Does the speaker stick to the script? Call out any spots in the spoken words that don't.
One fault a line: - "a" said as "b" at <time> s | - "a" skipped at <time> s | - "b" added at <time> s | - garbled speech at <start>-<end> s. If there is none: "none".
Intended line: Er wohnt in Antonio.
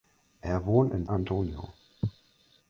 none